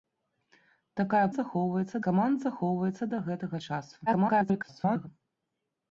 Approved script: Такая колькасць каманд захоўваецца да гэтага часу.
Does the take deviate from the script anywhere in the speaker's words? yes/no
yes